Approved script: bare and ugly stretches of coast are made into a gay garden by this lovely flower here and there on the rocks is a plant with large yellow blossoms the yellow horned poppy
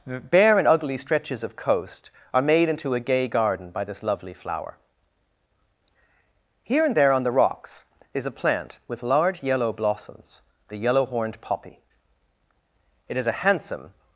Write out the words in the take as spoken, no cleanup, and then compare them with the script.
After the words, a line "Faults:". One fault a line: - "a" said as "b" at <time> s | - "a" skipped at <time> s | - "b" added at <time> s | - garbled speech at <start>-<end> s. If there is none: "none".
bare and ugly stretches of coast are made into a gay garden by this lovely flower here and there on the rocks is a plant with large yellow blossoms the yellow horned poppy it is a handsome
Faults:
- "it is a handsome" added at 13.1 s